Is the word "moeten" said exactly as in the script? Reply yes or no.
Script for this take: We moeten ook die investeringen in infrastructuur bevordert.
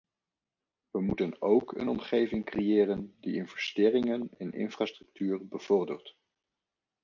yes